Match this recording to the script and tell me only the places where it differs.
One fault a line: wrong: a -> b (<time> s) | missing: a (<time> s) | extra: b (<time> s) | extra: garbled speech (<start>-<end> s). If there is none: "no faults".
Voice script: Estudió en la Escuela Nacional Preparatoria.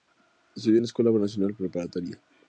no faults